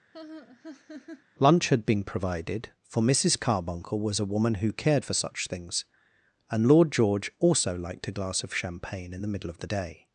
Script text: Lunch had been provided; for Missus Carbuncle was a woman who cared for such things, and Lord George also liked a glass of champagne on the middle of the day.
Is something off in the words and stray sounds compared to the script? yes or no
yes